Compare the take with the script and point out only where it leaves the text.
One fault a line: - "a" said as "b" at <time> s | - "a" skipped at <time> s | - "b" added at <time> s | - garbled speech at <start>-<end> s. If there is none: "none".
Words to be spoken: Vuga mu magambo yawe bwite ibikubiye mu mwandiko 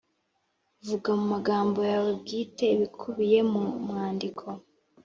none